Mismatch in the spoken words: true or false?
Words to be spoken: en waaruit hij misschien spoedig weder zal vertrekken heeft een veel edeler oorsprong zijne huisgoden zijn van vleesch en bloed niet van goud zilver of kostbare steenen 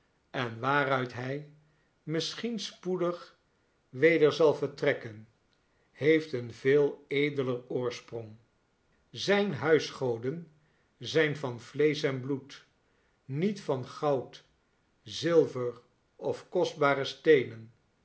false